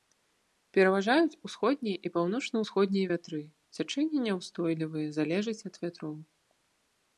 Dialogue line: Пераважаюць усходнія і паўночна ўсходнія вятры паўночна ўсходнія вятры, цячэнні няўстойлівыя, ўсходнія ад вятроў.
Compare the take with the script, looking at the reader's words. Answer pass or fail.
fail